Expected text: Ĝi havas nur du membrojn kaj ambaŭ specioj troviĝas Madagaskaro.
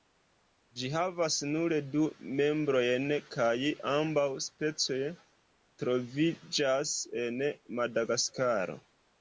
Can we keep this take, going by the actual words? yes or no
no